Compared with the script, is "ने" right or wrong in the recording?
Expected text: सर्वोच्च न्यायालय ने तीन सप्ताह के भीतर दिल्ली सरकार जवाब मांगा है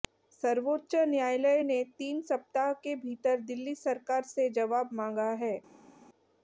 right